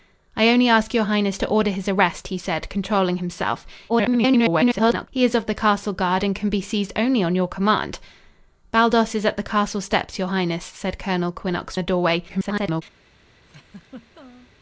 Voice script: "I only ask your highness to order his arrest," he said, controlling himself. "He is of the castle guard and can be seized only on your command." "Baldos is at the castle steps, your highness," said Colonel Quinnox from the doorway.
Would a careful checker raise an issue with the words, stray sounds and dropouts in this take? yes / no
yes